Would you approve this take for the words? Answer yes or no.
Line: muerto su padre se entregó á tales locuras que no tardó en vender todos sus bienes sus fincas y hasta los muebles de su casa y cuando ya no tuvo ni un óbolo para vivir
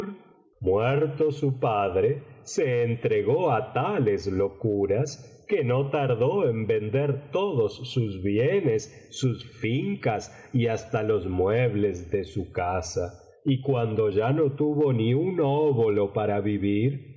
yes